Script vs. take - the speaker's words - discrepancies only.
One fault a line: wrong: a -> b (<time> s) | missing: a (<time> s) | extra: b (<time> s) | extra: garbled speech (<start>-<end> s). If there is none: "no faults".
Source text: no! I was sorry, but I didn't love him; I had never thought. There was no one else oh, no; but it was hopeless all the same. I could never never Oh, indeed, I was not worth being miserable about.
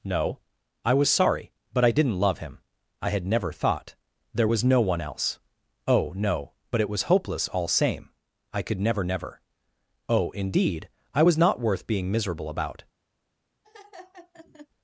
missing: the (7.7 s)